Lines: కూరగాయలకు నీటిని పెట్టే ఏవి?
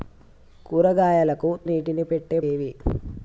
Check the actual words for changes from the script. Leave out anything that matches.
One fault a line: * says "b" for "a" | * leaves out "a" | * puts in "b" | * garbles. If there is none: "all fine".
all fine